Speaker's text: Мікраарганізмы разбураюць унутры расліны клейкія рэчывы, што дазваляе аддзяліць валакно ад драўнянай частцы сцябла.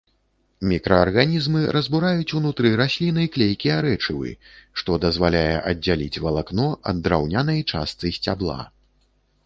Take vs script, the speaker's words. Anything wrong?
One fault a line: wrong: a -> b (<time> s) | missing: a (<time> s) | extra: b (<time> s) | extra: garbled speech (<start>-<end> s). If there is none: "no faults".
no faults